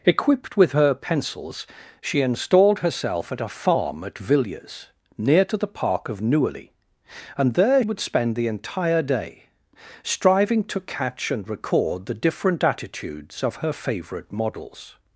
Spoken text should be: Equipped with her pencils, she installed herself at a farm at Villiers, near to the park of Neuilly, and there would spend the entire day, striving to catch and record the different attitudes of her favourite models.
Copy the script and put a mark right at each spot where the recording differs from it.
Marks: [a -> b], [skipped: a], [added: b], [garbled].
Equipped with her pencils, she installed herself at a farm at Villiers, near to the park of Neuilly, and there would spend the entire day, striving to catch and record the different attitudes of her favourite models.